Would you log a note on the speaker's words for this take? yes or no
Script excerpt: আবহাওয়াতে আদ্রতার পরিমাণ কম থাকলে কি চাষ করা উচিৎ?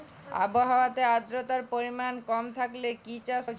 yes